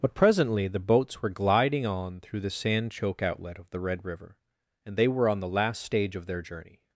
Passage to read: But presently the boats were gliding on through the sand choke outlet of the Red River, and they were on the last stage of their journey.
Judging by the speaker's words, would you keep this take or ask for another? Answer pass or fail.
pass